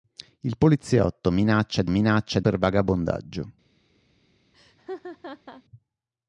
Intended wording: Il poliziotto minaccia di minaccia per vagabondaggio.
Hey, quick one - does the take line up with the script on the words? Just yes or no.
yes